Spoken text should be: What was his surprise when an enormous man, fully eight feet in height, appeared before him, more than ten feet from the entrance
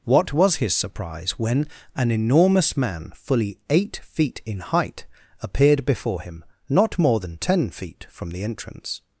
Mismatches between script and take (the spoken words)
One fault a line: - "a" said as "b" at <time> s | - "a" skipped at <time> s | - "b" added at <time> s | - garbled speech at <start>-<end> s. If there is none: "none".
- "not" added at 6.7 s